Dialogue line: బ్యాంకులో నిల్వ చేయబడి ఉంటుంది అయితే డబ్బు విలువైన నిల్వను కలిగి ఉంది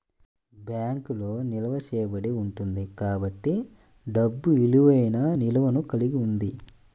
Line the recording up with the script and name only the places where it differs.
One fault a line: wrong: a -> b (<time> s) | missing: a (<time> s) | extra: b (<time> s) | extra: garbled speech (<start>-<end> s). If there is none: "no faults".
wrong: అయితే -> కాబట్టి (3.0 s)